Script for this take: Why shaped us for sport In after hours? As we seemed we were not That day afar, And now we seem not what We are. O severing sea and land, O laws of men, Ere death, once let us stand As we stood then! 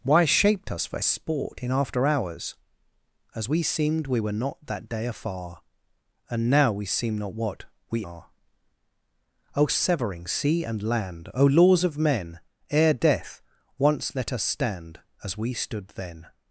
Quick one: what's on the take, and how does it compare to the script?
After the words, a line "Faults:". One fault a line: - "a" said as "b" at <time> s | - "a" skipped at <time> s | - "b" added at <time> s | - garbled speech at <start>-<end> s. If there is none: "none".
Why shaped us for sport In after hours? As we seemed we were not That day afar, And now we seem not what We are. O severing sea and land, O laws of men, Ere death, once let us stand As we stood then!
Faults:
none